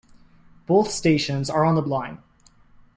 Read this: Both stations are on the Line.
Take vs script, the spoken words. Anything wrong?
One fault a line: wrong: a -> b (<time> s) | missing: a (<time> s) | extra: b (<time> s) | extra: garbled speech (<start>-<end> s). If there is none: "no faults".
no faults